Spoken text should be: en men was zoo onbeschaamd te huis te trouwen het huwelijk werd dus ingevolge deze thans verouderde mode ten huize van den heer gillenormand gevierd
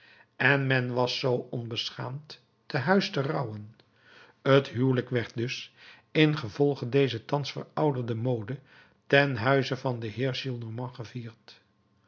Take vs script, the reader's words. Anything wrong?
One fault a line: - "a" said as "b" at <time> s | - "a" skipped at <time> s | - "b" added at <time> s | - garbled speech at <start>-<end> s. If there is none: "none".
none